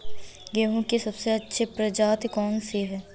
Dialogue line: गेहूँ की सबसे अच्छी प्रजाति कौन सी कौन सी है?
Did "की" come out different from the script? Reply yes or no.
no